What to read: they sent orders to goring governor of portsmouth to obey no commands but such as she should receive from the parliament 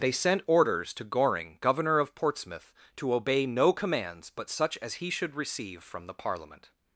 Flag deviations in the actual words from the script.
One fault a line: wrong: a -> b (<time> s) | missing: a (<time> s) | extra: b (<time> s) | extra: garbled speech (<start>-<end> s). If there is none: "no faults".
wrong: she -> he (5.0 s)